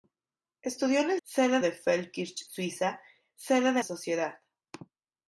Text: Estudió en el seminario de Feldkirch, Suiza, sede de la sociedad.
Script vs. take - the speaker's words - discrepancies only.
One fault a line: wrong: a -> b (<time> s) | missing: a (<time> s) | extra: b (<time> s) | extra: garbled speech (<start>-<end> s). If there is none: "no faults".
wrong: seminario -> sede (1.2 s)
missing: la (3.8 s)